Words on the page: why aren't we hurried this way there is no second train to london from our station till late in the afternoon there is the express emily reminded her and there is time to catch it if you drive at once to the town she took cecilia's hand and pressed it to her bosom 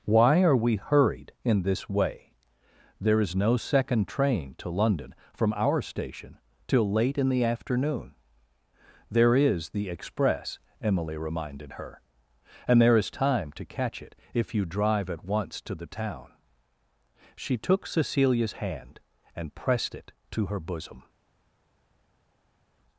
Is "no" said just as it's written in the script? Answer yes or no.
yes